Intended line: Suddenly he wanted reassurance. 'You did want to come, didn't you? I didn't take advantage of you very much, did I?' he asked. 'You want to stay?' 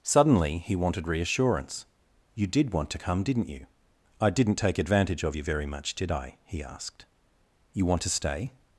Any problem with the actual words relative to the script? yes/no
no